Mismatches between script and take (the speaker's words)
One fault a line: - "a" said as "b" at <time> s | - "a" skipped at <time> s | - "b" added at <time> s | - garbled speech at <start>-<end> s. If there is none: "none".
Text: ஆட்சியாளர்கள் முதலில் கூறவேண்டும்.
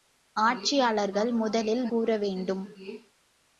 none